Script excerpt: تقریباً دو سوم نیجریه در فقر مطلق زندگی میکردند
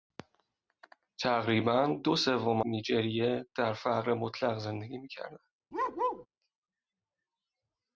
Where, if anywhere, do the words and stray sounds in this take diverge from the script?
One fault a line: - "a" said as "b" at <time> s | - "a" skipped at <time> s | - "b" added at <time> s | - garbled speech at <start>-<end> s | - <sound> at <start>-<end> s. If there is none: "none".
- bark at 5.7-6.3 s